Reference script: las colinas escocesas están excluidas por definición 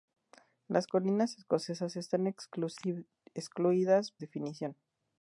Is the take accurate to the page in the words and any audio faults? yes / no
no